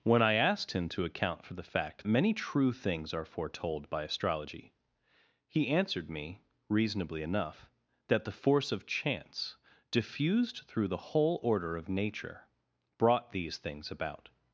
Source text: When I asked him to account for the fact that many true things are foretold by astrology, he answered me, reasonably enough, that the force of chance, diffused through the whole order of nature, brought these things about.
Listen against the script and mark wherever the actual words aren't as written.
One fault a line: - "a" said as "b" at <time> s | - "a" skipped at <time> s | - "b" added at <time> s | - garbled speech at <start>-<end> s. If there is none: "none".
- "that" skipped at 2.1 s